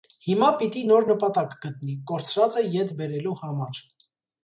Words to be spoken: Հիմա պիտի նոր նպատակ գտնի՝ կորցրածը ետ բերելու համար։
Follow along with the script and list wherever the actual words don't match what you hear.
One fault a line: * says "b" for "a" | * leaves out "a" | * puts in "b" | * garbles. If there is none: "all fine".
all fine